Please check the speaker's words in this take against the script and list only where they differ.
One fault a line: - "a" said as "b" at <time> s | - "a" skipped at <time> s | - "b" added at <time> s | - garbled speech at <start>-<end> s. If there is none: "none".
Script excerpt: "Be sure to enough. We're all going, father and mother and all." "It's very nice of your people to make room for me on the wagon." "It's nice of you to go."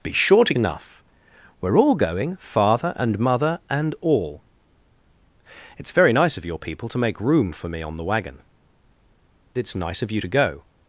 none